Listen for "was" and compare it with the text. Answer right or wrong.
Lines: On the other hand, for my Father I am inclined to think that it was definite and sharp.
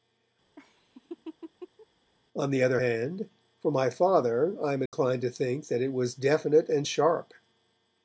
right